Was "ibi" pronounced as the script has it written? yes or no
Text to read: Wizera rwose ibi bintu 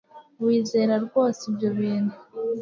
no